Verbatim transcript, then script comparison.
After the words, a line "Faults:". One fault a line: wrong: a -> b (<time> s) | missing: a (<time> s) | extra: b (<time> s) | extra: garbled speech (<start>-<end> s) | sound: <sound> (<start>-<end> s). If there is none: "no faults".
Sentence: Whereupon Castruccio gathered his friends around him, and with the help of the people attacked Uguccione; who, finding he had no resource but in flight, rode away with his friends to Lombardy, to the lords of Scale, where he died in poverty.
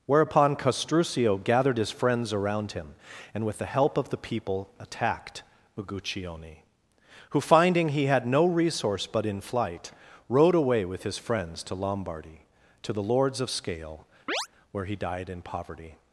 Whereupon Castruccio gathered his friends around him, and with the help of the people attacked Uguccione; who, finding he had no resource but in flight, rode away with his friends to Lombardy, to the lords of Scale, where he died in poverty.
Faults:
sound: chirp (14.3-14.5 s)